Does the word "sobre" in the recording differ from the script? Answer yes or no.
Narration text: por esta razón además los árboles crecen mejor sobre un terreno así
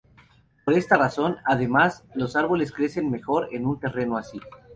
yes